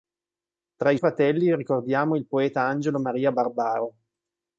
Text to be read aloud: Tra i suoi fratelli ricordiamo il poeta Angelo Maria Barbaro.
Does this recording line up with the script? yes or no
no